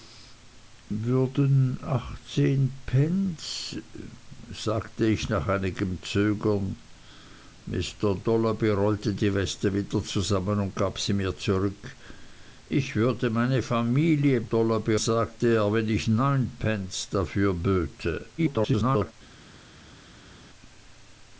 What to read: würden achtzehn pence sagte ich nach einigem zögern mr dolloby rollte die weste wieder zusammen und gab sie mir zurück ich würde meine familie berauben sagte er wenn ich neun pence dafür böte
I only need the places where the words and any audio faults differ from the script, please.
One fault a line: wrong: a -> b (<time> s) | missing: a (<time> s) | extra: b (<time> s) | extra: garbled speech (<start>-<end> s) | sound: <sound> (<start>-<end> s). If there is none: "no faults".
wrong: berauben -> dolloby (14.4 s)
extra: garbled speech (18.4-19.1 s)